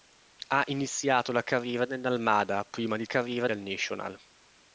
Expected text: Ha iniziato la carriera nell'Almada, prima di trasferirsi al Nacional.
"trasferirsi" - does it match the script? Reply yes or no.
no